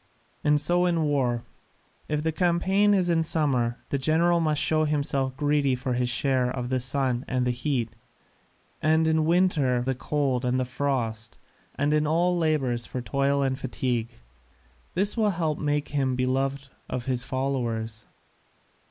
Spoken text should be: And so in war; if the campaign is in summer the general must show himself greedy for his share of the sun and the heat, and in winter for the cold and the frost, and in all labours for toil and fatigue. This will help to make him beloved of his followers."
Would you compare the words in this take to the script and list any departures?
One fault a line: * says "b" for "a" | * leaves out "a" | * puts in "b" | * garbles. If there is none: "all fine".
* leaves out "for"